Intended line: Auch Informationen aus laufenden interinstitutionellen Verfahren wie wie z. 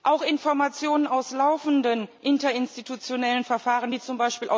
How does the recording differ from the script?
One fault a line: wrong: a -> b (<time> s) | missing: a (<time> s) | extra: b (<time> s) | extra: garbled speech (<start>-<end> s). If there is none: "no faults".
missing: wie (4.0 s)